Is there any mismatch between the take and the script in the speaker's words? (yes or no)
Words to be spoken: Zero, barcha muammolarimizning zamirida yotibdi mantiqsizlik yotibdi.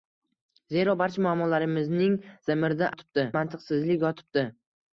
no